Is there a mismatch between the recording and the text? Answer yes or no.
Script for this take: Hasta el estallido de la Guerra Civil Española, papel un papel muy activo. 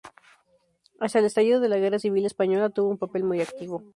yes